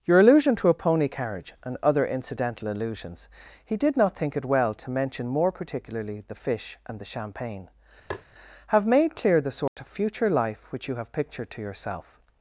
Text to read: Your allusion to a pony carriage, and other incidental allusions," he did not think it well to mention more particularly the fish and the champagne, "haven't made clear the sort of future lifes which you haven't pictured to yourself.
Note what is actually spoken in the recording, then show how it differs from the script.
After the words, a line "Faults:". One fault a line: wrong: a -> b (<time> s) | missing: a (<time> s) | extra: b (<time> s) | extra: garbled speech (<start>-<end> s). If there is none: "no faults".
Your allusion to a pony carriage, and other incidental allusions," he did not think it well to mention more particularly the fish and the champagne, "have made clear the sort of future life which you have pictured to yourself.
Faults:
wrong: haven't -> have (8.7 s)
wrong: lifes -> life (10.3 s)
wrong: haven't -> have (11.0 s)